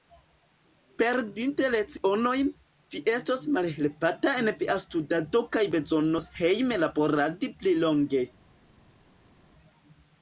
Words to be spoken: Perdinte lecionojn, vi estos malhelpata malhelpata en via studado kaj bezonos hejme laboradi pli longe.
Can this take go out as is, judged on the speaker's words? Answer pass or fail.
fail